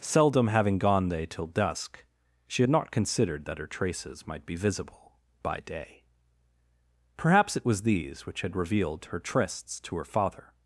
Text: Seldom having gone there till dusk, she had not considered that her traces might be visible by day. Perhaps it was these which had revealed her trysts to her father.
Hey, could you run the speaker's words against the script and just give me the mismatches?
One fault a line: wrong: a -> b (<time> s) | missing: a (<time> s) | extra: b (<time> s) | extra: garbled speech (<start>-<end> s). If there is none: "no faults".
wrong: there -> they (1.1 s)